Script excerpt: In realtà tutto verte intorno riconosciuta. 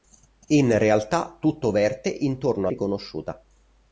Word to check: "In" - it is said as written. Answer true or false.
true